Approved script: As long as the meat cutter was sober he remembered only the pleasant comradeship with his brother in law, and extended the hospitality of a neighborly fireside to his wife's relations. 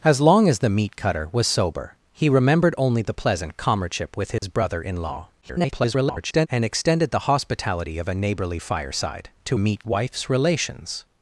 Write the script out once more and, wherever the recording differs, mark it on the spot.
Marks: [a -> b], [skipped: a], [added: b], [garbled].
As long as the meat cutter was sober he remembered only the pleasant comradeship with his brother in law, [garbled] and extended the hospitality of a neighborly fireside to [his -> meat] wife's relations.